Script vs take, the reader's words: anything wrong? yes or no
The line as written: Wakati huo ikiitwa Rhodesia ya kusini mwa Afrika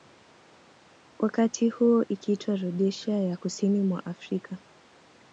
no